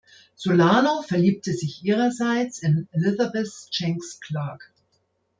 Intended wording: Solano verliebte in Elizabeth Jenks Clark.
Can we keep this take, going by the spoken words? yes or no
no